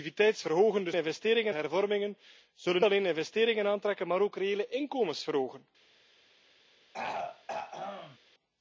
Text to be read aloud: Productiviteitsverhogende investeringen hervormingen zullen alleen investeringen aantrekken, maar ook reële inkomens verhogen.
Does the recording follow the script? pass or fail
pass